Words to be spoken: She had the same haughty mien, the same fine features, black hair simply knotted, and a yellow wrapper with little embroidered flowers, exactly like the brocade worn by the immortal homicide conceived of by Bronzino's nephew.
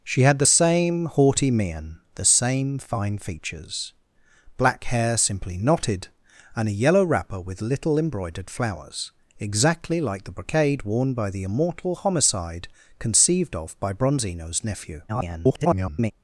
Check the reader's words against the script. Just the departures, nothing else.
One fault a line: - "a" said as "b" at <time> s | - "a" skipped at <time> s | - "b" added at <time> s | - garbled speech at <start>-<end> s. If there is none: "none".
- garbled speech at 15.1-16.1 s